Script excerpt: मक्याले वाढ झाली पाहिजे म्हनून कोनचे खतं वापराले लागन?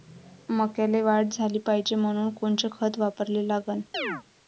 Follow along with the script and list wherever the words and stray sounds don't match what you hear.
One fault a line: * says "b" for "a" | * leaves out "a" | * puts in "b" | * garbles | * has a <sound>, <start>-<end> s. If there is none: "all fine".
* has a chirp, 3.9-4.2 s